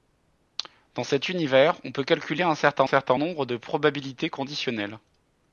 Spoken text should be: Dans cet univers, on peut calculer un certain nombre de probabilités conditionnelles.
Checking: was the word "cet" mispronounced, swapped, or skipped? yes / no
no